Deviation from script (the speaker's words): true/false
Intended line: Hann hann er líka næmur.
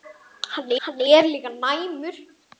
false